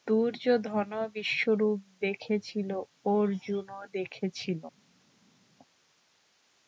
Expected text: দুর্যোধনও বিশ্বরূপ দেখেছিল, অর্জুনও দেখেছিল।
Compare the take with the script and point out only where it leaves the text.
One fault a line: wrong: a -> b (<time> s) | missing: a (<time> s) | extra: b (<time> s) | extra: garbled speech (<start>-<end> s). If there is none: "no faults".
no faults